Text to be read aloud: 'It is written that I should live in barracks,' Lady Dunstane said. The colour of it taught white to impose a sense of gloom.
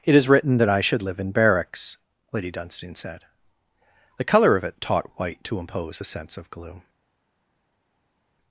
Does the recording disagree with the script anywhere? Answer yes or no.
no